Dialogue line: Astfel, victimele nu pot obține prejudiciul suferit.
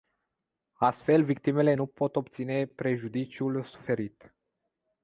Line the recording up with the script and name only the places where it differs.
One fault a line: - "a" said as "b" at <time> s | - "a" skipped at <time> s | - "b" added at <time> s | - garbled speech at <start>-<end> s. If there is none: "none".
none